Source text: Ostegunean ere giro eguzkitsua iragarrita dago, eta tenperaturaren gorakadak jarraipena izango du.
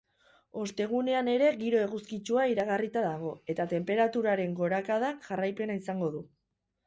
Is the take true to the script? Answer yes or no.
yes